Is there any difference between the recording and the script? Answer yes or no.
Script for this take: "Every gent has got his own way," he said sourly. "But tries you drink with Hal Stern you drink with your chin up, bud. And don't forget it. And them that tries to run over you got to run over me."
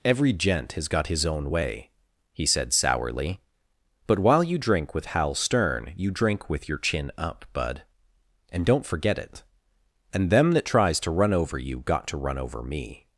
yes